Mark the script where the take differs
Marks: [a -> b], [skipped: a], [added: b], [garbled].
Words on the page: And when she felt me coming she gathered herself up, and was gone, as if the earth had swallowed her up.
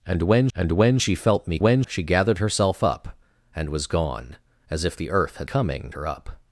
And when [added: and when] she felt me [coming -> when] she gathered herself up, and was gone, as if the earth had [swallowed -> coming] her up.